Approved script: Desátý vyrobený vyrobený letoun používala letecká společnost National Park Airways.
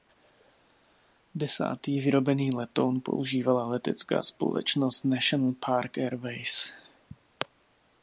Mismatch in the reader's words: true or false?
true